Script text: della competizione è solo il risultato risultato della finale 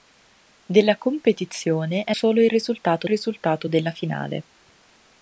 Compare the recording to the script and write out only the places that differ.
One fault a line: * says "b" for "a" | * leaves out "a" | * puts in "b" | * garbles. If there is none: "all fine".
all fine